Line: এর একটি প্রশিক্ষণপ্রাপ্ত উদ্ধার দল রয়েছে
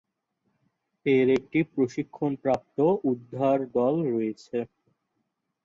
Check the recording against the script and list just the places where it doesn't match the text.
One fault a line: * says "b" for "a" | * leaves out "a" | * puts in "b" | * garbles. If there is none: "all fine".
all fine